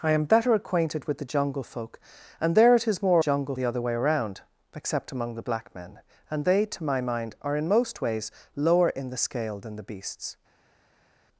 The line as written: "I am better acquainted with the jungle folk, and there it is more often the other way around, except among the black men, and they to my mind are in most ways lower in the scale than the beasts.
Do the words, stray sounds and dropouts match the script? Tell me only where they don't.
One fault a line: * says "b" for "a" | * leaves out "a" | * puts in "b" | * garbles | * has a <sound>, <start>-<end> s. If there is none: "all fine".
* says "jungle" for "often"